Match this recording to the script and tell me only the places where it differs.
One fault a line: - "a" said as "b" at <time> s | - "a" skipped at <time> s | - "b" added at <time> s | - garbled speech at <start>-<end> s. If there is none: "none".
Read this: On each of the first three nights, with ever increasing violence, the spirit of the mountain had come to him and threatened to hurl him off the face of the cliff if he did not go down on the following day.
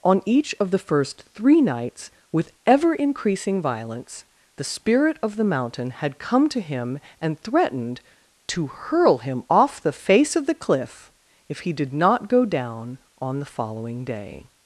none